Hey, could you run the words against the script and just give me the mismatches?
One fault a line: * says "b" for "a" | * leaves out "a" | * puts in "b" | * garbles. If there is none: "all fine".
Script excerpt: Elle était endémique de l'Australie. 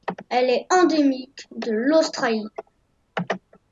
* says "est" for "était"